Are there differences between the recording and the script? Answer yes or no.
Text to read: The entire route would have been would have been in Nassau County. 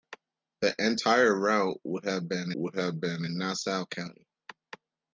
no